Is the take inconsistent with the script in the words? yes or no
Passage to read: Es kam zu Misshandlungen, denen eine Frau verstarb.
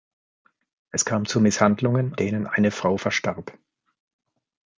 no